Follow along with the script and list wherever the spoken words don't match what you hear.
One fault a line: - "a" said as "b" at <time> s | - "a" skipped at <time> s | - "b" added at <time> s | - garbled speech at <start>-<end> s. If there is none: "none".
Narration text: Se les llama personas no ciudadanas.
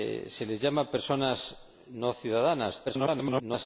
- garbled speech at 2.8-3.7 s